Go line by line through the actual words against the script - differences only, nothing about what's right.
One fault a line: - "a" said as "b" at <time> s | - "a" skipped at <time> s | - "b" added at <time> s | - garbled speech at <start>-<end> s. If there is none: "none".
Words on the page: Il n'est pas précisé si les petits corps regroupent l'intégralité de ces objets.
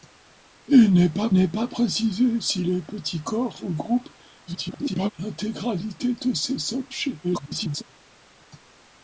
- "n'est pas" added at 1.3 s
- garbled speech at 4.5-5.1 s
- garbled speech at 7.2-7.8 s